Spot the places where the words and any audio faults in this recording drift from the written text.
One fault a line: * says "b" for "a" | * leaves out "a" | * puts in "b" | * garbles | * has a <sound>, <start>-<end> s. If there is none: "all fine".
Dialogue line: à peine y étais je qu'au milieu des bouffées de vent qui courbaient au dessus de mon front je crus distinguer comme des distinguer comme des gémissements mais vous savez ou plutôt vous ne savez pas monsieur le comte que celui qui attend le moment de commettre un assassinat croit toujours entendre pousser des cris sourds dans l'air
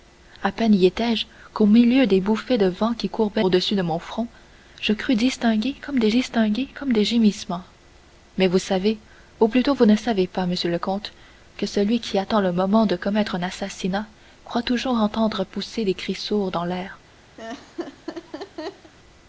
* has a laugh, 17.4-18.9 s